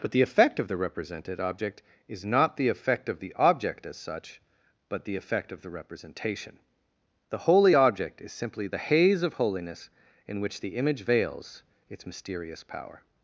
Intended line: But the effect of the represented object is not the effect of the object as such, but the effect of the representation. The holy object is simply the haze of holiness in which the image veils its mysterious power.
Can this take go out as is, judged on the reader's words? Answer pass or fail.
pass